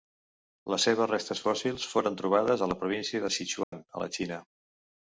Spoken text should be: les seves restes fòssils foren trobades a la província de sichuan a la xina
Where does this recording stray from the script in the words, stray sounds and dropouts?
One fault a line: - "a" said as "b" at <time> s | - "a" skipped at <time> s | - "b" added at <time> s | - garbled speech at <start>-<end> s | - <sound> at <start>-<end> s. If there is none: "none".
- dropout at 3.6-3.7 s